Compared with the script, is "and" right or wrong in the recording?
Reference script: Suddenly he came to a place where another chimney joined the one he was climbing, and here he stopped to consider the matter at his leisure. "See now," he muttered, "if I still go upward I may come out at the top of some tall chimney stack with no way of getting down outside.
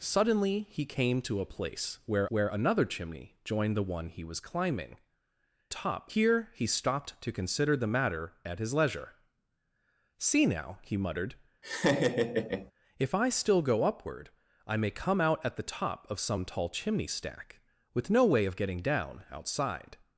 wrong